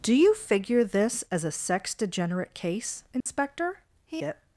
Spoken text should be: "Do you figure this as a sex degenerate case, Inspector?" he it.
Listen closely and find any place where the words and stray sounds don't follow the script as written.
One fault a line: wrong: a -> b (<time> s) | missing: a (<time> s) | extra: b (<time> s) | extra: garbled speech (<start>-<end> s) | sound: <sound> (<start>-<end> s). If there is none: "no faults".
sound: dropout (3.2-3.3 s)